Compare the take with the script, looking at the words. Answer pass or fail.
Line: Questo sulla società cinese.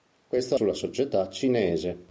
pass